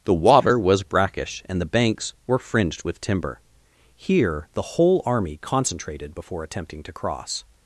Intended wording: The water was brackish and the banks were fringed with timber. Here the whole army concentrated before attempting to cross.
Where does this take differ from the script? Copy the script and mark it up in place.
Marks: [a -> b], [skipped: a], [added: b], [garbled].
The water was brackish and the banks were fringed with timber. Here the whole army concentrated before attempting to cross.